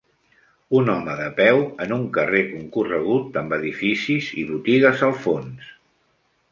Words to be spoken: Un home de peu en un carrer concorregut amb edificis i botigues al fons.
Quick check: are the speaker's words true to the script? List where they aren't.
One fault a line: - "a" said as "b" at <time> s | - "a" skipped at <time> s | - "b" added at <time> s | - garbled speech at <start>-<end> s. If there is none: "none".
none